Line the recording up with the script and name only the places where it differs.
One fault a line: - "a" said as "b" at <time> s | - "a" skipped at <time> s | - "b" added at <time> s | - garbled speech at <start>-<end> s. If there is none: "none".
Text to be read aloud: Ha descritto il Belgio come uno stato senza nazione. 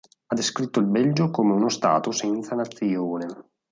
none